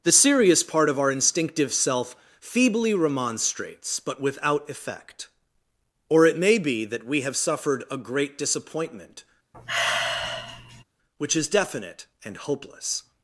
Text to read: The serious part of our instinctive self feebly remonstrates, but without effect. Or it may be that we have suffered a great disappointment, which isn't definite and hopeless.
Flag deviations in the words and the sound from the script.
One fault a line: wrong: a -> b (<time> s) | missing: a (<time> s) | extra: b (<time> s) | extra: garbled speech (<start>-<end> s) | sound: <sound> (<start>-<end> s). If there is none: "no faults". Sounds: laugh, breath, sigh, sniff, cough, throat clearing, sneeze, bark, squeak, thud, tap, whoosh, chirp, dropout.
sound: sigh (9.5-10.8 s)
wrong: isn't -> is (11.4 s)